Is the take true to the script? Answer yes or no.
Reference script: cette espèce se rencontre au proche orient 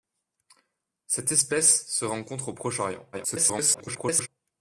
no